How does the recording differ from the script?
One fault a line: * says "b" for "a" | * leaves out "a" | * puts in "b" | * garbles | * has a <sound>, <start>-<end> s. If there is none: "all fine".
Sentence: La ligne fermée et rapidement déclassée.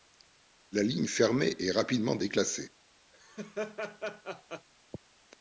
* has a laugh, 3.1-4.7 s